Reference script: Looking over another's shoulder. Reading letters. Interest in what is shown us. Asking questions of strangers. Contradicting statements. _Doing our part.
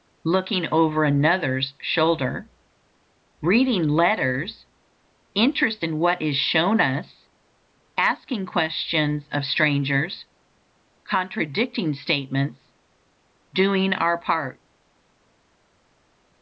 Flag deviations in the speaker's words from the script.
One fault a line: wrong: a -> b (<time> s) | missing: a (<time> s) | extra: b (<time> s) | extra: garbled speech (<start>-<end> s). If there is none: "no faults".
no faults